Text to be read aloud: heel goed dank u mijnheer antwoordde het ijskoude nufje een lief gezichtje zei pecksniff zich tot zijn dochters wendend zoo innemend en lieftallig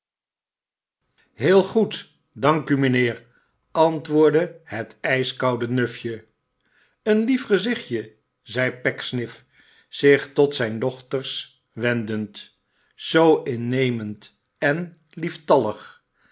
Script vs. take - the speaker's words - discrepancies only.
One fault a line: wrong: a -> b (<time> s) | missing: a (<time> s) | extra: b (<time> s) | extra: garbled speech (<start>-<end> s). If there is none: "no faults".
no faults